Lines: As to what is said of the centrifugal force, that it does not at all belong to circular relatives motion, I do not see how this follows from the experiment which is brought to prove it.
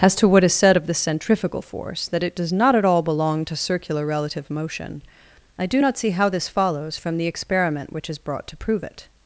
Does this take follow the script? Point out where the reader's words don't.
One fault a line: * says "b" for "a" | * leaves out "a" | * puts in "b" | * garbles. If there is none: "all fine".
* says "relative" for "relatives"